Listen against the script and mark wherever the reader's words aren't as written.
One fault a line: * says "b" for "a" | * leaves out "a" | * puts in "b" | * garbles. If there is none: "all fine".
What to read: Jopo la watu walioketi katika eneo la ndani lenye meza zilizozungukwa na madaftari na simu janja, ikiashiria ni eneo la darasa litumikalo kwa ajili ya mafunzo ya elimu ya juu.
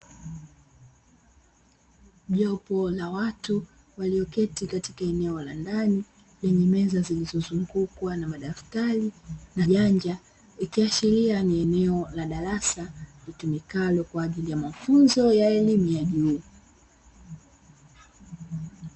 * leaves out "simu"